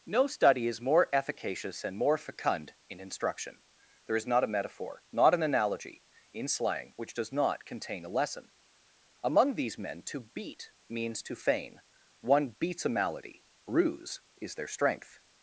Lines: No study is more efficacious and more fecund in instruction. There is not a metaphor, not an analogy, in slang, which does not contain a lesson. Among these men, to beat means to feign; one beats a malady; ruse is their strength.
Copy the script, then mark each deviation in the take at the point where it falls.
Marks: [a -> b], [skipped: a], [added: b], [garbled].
No study is more efficacious and more fecund in instruction. There is not a metaphor, not an analogy, in slang, which does not contain a lesson. Among these men, to beat means to feign; one beats a malady; ruse is their strength.